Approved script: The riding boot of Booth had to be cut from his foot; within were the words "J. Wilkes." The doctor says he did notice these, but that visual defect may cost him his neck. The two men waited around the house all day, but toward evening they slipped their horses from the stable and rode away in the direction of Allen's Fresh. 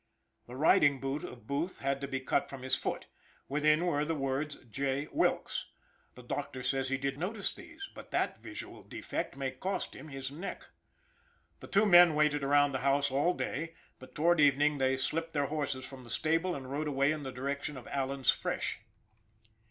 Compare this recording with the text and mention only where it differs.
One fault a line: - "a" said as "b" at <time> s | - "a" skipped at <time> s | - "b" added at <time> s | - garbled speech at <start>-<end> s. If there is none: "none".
none